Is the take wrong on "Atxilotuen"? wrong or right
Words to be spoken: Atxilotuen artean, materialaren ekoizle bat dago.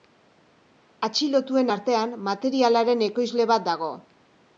right